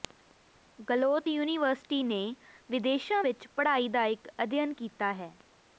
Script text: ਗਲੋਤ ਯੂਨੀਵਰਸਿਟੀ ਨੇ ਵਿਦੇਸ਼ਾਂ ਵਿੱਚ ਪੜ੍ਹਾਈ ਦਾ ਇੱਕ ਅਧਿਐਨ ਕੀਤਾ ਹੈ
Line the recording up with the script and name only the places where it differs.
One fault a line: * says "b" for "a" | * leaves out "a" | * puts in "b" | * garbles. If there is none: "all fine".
all fine